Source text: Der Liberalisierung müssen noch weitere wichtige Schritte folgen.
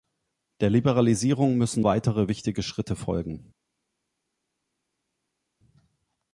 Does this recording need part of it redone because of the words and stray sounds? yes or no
yes